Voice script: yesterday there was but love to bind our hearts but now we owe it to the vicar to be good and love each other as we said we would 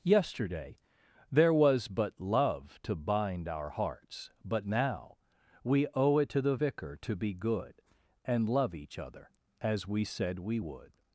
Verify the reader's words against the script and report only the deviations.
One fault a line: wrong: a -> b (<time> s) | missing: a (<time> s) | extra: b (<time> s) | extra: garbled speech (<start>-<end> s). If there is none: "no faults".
no faults